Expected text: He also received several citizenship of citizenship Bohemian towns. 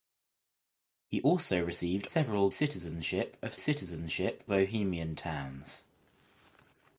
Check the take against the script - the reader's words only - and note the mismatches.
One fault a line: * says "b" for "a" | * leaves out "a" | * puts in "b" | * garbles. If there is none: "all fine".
all fine